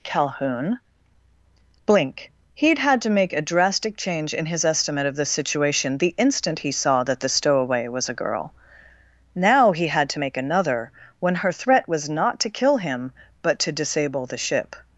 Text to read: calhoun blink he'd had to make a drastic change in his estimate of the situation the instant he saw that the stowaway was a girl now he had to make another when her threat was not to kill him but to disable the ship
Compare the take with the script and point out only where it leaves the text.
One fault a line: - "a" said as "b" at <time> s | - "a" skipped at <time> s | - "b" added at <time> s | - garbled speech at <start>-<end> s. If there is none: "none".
none